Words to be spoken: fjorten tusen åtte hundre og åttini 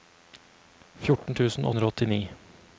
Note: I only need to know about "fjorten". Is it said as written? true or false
true